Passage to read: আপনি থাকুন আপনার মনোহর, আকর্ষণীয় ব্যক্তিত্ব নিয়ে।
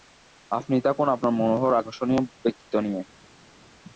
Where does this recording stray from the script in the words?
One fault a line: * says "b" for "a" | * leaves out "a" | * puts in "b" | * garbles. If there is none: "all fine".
all fine